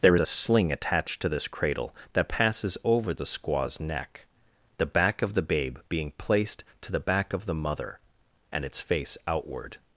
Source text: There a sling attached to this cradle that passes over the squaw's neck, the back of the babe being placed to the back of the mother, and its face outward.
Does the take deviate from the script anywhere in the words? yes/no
no